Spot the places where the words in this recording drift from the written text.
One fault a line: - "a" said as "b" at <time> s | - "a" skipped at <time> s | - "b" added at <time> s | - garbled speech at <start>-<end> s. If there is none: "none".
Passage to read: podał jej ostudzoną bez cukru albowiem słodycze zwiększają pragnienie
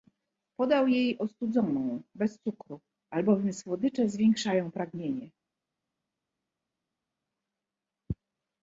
none